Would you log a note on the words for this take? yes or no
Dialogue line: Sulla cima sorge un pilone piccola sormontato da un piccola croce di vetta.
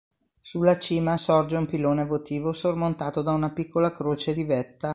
yes